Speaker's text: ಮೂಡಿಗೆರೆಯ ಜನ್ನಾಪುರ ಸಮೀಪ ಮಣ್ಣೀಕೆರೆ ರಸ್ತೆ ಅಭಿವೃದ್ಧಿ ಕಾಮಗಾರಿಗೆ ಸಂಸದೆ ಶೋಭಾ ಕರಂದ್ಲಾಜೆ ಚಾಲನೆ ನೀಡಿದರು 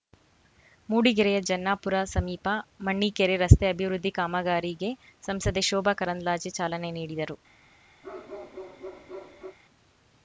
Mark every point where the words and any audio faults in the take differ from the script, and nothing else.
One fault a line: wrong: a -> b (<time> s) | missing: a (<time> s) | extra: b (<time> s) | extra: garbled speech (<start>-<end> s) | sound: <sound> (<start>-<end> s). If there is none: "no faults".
sound: bark (8.0-9.6 s)